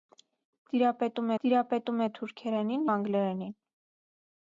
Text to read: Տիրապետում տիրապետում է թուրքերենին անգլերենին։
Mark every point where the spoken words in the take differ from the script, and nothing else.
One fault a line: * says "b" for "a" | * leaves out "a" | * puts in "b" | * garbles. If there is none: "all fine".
all fine